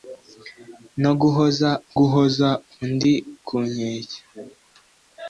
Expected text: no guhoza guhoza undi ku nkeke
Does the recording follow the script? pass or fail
pass